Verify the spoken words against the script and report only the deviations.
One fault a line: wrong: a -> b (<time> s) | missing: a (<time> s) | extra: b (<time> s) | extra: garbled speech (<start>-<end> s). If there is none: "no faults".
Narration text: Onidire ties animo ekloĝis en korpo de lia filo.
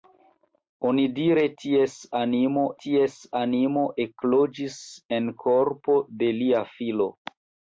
extra: ties animo (2.9 s)